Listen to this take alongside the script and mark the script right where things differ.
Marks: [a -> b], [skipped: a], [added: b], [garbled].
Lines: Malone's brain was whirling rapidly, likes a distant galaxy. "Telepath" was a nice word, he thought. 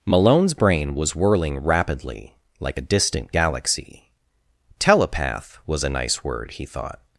Malone's brain was whirling rapidly, [likes -> like] a distant galaxy. "Telepath" was a nice word, he thought.